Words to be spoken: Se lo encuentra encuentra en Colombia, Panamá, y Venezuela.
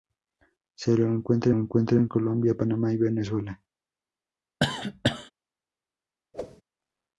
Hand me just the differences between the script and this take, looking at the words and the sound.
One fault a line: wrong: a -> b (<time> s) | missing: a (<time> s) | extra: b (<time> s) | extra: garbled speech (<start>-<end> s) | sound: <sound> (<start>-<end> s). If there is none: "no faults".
sound: cough (4.6-5.3 s)
sound: whoosh (6.3-6.6 s)